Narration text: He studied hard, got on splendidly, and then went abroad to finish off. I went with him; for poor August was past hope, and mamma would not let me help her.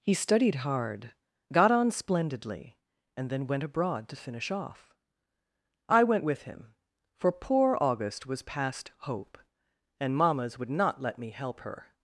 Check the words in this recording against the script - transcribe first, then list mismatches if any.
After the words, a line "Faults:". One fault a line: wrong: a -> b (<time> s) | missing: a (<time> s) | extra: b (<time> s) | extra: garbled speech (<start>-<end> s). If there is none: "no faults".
He studied hard, got on splendidly, and then went abroad to finish off. I went with him; for poor August was past hope, and mammas would not let me help her.
Faults:
wrong: mamma -> mammas (10.2 s)